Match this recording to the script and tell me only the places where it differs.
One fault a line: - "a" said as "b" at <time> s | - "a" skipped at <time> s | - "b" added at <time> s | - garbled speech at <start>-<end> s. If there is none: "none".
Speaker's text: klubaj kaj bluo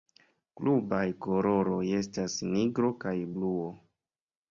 - "koloroj estas nigro" added at 1.2 s